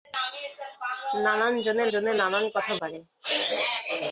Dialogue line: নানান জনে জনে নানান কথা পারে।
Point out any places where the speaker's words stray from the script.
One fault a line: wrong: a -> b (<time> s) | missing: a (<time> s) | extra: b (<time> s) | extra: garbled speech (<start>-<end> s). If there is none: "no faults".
no faults